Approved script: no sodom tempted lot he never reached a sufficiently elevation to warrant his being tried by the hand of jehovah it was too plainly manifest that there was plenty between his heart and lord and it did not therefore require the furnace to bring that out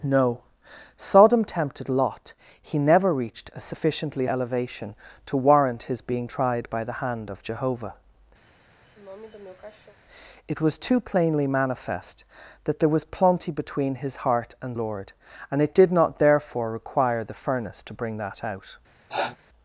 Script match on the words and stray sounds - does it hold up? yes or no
no